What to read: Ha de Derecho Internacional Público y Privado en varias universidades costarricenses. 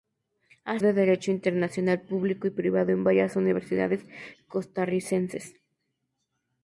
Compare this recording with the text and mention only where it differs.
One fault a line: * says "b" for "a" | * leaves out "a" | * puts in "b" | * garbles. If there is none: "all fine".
all fine